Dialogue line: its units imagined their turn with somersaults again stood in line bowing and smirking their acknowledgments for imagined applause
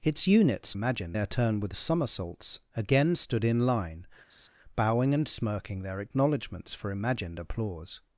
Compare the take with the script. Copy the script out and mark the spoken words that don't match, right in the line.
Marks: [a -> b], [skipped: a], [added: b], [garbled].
its units imagined their turn with somersaults again stood in line bowing and smirking their acknowledgments for imagined applause